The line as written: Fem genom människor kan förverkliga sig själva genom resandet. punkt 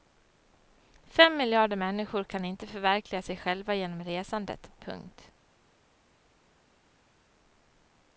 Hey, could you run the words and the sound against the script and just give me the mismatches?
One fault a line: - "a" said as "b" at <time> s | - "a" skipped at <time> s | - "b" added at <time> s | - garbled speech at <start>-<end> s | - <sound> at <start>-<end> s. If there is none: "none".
- "genom" said as "miljarder" at 1.4 s
- "inte" added at 2.5 s